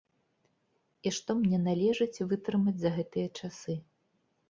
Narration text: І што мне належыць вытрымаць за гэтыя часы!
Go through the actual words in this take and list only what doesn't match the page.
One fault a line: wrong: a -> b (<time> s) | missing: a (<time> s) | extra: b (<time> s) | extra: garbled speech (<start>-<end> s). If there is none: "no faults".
no faults